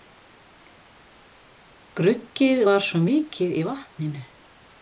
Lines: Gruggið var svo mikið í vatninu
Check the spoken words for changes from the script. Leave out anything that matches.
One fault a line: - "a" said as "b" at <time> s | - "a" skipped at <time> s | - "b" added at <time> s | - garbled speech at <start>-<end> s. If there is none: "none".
none